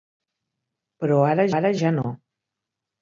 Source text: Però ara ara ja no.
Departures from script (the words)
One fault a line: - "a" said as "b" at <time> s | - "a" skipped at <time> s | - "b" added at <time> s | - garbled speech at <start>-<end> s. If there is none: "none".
none